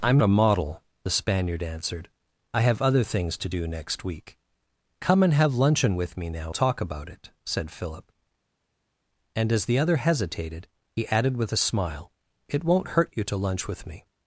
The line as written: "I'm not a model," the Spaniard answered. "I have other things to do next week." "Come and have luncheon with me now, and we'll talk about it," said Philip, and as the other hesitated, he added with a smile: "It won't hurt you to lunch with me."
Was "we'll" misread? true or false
true